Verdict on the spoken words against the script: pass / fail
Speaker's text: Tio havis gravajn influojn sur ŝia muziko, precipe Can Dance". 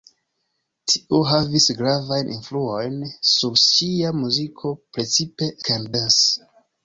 pass